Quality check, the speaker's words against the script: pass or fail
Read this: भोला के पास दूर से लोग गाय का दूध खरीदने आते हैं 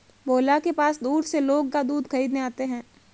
fail